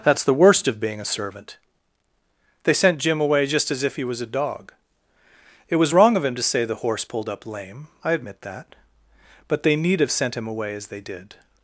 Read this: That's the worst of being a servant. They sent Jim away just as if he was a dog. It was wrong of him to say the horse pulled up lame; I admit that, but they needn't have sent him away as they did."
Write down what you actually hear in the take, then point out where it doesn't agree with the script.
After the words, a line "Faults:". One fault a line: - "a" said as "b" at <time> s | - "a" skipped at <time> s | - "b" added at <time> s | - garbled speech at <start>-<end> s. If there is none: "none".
That's the worst of being a servant. They sent Jim away just as if he was a dog. It was wrong of him to say the horse pulled up lame; I admit that, but they need have sent him away as they did."
Faults:
- "needn't" said as "need" at 9.8 s